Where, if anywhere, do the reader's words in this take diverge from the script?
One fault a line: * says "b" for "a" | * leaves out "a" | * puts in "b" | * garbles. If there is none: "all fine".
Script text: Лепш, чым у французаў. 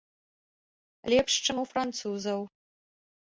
all fine